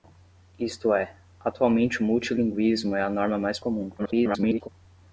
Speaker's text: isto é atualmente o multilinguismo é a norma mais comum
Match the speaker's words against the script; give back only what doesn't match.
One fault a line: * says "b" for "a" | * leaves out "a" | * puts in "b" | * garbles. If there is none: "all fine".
* garbles